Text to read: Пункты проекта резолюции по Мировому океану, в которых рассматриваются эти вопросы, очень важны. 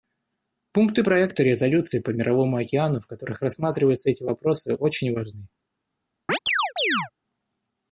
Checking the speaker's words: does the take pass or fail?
pass